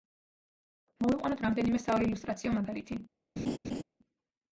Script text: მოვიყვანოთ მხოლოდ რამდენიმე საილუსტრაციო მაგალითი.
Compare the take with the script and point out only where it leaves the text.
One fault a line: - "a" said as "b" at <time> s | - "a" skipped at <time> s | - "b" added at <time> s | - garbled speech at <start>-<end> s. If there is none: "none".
- "მხოლოდ" skipped at 1.4 s